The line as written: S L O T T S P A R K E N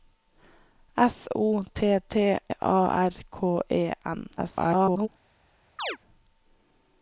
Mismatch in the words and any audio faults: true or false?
true